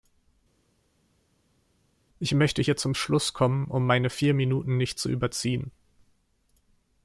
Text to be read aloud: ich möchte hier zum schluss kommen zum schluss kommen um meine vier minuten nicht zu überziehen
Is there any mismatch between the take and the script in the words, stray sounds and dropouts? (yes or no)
yes